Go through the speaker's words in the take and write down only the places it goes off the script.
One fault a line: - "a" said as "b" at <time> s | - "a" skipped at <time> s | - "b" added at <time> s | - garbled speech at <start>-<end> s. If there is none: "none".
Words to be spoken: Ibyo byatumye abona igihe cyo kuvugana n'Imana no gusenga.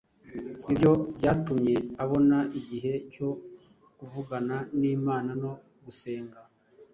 none